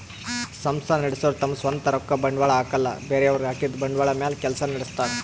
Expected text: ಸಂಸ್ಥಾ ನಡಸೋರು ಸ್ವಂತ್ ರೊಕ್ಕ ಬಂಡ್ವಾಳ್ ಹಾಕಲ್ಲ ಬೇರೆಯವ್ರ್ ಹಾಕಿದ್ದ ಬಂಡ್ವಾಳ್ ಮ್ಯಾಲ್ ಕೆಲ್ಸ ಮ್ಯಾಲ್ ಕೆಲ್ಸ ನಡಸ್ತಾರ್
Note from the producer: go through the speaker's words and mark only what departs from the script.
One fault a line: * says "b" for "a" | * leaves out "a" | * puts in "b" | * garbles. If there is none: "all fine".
* puts in "ತಮ್"
* leaves out "ಮ್ಯಾಲ್ ಕೆಲ್ಸ"